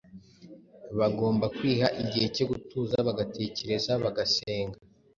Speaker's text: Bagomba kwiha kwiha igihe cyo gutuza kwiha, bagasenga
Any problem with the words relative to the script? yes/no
yes